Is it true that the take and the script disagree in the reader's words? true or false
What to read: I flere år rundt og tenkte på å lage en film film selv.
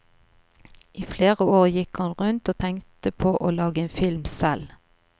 true